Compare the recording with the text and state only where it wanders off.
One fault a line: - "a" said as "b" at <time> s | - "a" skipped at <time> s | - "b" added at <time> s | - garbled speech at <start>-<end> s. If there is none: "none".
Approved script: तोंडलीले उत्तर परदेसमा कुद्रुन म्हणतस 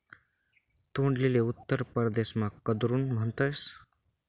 none